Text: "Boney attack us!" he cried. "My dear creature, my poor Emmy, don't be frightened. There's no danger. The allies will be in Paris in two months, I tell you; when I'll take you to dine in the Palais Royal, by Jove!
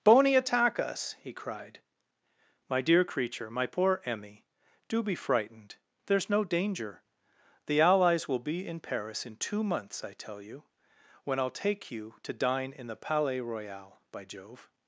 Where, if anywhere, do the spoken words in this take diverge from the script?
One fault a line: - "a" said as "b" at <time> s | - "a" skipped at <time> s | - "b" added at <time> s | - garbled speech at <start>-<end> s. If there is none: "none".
- "don't" said as "do" at 4.9 s